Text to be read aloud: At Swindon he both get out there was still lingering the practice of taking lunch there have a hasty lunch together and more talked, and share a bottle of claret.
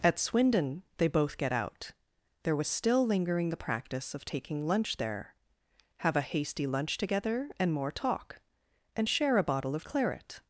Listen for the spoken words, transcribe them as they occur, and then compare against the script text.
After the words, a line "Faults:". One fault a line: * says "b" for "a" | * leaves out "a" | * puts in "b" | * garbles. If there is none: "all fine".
At Swindon they both get out there was still lingering the practice of taking lunch there have a hasty lunch together and more talk, and share a bottle of claret.
Faults:
* says "they" for "he"
* says "talk" for "talked"